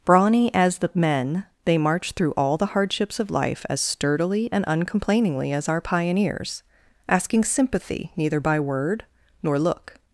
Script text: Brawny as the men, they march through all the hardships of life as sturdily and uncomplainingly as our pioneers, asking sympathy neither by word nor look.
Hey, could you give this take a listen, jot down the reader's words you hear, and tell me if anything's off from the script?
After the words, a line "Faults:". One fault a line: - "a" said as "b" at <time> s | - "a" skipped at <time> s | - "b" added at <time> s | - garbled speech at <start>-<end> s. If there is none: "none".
Brawny as the men, they march through all the hardships of life as sturdily and uncomplainingly as our pioneers, asking sympathy neither by word nor look.
Faults:
none